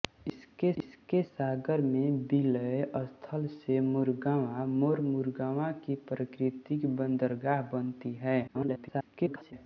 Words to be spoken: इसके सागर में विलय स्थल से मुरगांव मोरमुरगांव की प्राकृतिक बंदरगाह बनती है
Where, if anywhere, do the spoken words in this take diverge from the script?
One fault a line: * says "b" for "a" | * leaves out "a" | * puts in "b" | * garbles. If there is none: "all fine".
* puts in "इसके"
* garbles